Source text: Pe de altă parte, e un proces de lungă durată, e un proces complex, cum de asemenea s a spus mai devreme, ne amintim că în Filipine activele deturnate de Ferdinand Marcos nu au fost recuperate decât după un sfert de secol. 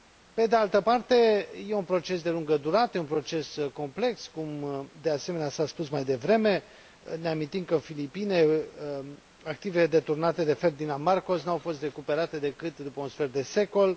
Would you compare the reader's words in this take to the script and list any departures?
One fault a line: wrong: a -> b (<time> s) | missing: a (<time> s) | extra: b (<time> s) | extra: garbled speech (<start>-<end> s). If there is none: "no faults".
no faults